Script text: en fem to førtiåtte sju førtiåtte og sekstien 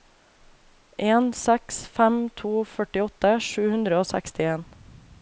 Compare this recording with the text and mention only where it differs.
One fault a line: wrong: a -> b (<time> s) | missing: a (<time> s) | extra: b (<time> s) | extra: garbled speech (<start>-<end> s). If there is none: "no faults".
extra: seks (1.4 s)
wrong: førtiåtte -> hundre (3.8 s)